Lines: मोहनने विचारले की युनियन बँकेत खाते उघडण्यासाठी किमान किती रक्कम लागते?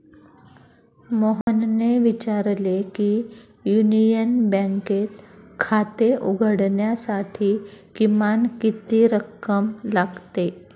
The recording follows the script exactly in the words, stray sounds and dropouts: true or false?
false